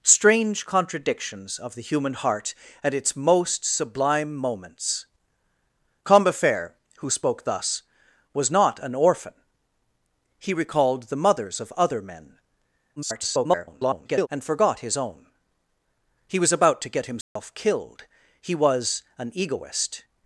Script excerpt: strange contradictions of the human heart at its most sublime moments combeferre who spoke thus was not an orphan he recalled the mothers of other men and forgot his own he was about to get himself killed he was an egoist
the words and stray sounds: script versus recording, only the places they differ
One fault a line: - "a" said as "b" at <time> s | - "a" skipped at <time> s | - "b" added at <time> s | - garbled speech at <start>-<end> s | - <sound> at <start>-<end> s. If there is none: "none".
- garbled speech at 13.0-14.3 s
- dropout at 17.2-17.4 s